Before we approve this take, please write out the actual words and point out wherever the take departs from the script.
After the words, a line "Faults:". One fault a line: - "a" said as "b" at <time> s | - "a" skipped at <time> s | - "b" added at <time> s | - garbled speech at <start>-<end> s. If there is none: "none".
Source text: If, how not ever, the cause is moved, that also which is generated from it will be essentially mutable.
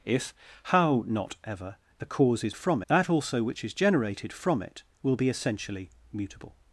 If, how not ever, the cause is from, that also which is generated from it will be essentially mutable.
Faults:
- "moved" said as "from" at 2.5 s